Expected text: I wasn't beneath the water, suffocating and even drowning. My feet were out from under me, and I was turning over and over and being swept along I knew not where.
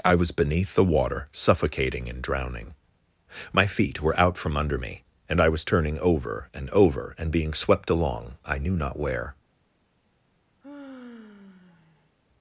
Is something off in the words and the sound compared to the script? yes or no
yes